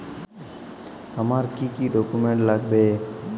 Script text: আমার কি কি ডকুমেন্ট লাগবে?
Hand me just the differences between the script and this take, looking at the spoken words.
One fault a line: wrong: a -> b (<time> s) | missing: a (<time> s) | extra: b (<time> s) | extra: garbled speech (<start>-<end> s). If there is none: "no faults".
no faults